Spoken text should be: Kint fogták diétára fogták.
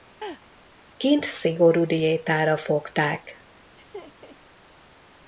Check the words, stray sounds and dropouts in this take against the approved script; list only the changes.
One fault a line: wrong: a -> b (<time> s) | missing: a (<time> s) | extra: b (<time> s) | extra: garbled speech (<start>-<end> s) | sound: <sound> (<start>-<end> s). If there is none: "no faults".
sound: laugh (0.2-0.4 s)
wrong: fogták -> szigorú (1.2 s)
sound: laugh (3.8-4.4 s)